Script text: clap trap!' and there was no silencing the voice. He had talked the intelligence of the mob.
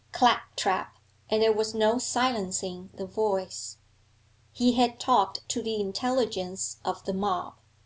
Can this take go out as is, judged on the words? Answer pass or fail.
fail